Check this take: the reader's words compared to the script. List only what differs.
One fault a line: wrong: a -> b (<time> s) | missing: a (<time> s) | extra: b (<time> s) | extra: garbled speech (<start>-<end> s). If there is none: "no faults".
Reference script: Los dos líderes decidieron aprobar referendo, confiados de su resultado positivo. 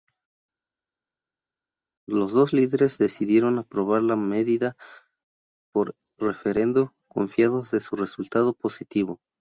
extra: la medida por (4.0 s)